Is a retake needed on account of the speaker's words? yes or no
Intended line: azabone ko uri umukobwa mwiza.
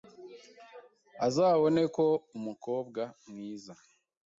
yes